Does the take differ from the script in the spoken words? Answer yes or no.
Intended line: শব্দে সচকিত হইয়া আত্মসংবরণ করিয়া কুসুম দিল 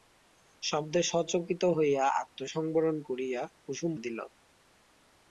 no